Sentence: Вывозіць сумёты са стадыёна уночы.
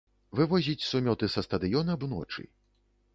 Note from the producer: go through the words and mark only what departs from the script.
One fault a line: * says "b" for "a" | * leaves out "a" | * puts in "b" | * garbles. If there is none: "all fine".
all fine